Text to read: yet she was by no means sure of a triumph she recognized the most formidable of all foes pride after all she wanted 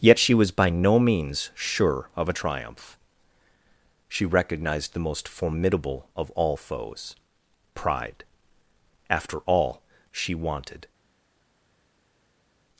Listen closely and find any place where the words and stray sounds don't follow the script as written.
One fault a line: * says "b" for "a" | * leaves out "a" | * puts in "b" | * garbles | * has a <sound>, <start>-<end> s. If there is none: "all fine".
all fine